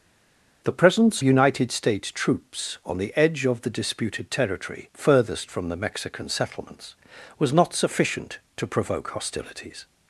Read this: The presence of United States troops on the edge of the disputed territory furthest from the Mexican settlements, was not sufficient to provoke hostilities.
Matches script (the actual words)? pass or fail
fail